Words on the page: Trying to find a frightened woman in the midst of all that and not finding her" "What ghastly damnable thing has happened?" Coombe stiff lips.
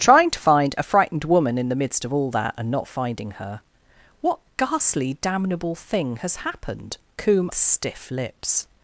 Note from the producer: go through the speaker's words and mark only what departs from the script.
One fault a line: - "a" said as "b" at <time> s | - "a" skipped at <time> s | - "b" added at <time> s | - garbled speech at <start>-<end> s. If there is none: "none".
none